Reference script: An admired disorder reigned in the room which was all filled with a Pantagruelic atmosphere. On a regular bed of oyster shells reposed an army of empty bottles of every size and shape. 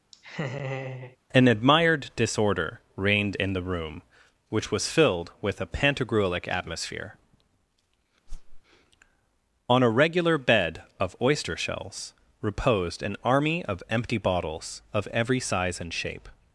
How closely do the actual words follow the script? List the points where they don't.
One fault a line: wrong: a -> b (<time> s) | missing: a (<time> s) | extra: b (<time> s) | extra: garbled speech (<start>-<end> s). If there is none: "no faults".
missing: all (4.9 s)